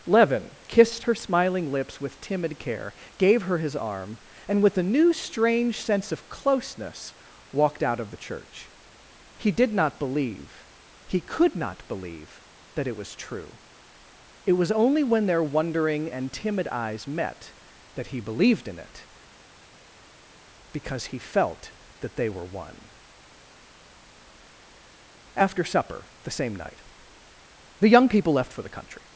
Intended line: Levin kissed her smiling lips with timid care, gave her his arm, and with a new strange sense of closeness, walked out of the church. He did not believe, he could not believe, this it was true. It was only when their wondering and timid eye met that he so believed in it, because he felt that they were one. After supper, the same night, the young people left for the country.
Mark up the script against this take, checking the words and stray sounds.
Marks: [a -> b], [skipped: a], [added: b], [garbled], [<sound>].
Levin kissed her smiling lips with timid care, gave her his arm, and with a new strange sense of closeness, walked out of the church. He did not believe, he could not believe, [this -> that] it was true. It was only when their wondering and timid [eye -> eyes] met that he [skipped: so] believed in it, because he felt that they were one. After supper, the same night, the young people left for the country.